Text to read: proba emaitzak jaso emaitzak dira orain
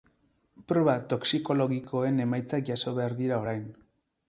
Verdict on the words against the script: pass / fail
fail